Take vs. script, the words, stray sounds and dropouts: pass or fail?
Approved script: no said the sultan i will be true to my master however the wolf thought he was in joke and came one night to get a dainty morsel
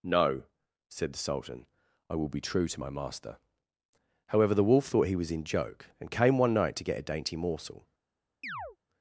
fail